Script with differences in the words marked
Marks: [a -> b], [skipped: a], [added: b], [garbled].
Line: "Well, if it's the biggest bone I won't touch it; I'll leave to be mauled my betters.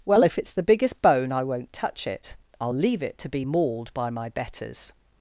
"Well, if it's the biggest bone I won't touch it; I'll leave [added: it] to be mauled [added: by] my betters.